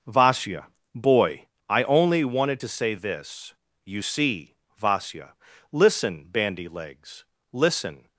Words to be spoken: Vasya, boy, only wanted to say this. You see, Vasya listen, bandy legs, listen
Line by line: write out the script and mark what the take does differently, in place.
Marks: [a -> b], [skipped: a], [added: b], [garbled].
Vasya, boy, [added: I] only wanted to say this. You see, Vasya listen, bandy legs, listen